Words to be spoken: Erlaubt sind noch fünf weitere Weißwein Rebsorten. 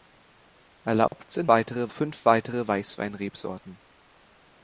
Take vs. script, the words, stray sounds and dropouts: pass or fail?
fail